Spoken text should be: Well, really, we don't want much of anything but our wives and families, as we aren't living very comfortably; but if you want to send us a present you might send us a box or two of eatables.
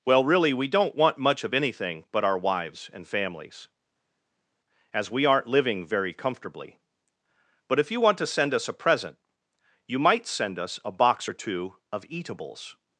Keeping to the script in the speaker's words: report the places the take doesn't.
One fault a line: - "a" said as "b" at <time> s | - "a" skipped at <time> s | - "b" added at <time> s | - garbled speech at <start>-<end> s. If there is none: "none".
none